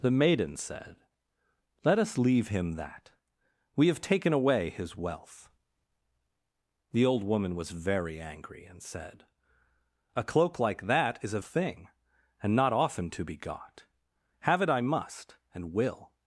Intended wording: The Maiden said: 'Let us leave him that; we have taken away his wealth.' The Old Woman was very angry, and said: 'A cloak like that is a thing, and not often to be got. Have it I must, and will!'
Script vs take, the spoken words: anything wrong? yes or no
no